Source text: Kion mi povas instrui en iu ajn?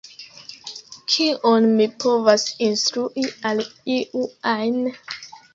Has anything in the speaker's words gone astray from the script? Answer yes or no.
yes